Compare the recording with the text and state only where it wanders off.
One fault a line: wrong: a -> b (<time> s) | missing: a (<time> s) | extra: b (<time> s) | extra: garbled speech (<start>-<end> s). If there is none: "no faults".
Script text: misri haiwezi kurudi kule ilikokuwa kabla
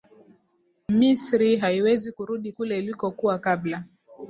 no faults